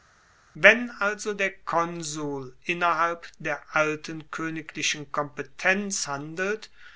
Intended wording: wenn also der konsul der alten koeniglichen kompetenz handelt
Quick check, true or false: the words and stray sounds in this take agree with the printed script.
false